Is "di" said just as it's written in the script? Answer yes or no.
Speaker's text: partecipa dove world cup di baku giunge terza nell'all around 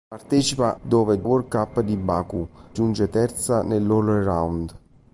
yes